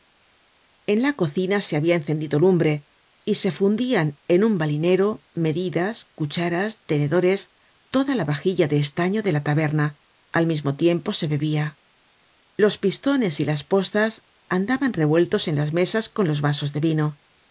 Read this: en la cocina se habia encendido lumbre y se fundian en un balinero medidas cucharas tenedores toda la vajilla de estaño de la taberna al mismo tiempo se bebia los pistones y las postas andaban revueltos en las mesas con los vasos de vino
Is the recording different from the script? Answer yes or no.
no